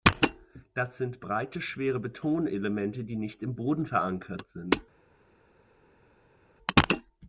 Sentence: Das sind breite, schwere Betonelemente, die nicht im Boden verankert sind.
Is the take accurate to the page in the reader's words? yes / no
yes